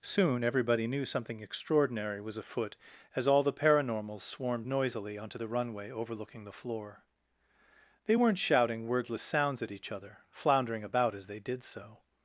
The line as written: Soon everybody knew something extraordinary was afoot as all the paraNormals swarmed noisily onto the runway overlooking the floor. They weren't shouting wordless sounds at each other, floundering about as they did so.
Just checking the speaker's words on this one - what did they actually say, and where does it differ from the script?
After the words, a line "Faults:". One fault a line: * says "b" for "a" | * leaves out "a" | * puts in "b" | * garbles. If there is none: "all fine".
Soon everybody knew something extraordinary was afoot as all the paraNormals swarmed noisily onto the runway overlooking the floor. They weren't shouting wordless sounds at each other, floundering about as they did so.
Faults:
all fine